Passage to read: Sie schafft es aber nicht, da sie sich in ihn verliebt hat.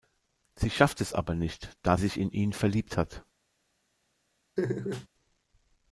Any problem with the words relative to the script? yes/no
yes